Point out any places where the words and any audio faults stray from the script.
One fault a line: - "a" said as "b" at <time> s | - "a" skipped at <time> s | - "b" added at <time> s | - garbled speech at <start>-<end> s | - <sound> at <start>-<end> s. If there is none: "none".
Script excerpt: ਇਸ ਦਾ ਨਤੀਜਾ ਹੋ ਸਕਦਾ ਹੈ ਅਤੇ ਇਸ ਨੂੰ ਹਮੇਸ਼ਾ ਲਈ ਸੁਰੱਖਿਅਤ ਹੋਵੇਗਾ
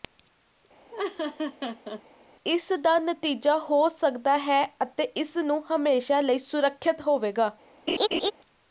- laugh at 0.9-2.0 s
- laugh at 7.9-8.3 s